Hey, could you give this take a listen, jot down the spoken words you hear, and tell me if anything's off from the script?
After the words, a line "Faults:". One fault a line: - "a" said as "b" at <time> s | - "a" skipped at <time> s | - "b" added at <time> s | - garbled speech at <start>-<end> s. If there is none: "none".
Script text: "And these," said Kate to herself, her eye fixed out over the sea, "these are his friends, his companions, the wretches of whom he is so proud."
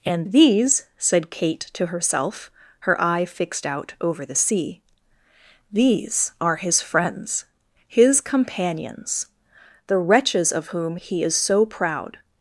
"And these," said Kate to herself, her eye fixed out over the sea, "these are his friends, his companions, the wretches of whom he is so proud."
Faults:
none